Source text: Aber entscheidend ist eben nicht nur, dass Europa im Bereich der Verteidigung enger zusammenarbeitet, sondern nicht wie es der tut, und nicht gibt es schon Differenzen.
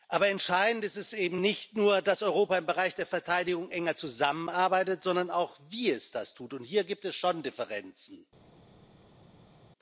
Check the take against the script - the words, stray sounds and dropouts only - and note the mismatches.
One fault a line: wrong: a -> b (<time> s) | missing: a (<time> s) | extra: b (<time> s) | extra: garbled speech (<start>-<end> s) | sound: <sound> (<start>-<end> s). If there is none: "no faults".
wrong: nicht -> auch (5.3 s)
wrong: der -> das (6.1 s)
wrong: nicht -> hier (6.6 s)